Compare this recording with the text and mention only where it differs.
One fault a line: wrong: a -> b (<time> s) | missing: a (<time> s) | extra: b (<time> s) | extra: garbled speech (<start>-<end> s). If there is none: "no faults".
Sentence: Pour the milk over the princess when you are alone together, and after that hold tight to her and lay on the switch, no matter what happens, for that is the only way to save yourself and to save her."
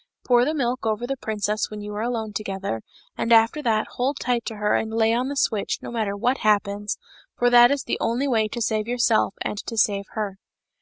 no faults